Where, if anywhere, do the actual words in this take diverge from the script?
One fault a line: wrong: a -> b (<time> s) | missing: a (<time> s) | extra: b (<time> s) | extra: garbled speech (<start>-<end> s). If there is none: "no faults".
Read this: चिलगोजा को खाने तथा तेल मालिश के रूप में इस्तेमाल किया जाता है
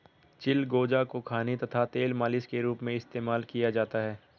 no faults